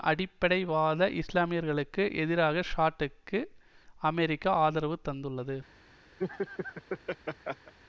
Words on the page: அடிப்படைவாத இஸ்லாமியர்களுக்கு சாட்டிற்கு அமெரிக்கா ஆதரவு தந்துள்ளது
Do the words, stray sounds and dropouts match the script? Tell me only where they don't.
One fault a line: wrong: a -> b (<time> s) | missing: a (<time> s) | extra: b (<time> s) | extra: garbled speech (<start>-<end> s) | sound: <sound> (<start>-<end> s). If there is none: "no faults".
extra: எதிராக (2.1 s)
sound: laugh (6.2-7.7 s)